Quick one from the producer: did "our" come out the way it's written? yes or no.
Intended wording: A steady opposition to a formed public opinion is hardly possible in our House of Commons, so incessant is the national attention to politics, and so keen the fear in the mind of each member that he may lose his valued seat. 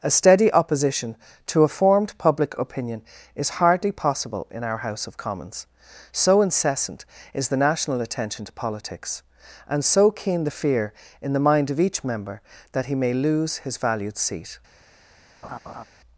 yes